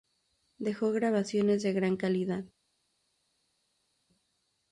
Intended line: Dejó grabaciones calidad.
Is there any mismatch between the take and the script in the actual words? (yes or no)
yes